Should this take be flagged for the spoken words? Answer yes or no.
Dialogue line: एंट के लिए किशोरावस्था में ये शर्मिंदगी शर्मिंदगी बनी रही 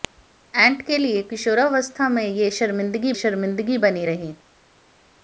no